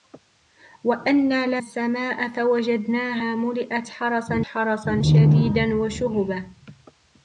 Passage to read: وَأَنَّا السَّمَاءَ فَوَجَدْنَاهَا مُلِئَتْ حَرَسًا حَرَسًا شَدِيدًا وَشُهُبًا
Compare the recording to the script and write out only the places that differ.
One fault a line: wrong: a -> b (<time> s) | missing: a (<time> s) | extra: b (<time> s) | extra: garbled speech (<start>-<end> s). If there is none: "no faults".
no faults